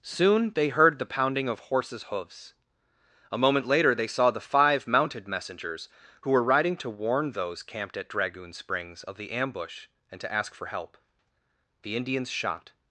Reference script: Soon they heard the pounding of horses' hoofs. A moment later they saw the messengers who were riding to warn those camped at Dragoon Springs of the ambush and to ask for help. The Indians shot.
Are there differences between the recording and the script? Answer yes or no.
yes